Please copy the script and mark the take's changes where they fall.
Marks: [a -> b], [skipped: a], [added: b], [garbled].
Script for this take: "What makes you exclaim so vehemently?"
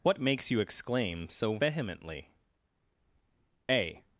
"What makes you exclaim so vehemently?" [added: A]